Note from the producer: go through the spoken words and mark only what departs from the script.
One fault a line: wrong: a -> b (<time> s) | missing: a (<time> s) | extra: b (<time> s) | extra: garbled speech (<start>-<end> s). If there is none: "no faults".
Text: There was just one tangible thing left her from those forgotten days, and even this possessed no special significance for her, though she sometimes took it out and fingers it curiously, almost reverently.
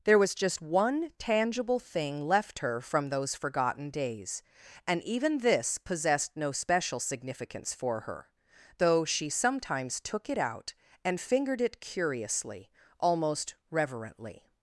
wrong: fingers -> fingered (11.2 s)